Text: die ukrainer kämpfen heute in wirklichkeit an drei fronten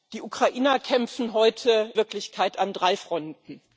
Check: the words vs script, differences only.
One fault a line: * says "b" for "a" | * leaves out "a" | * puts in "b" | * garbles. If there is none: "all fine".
* leaves out "in"